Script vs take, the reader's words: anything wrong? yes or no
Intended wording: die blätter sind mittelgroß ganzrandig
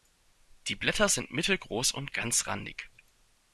yes